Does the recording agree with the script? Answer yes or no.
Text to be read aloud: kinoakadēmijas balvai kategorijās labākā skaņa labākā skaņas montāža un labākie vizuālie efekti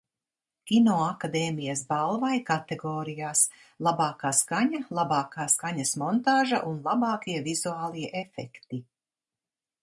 yes